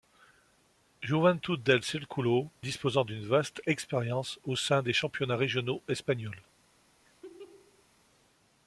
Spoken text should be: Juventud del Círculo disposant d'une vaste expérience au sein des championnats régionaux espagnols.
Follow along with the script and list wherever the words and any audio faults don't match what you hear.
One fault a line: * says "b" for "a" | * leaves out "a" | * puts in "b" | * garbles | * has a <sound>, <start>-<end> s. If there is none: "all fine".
* has a laugh, 7.0-7.9 s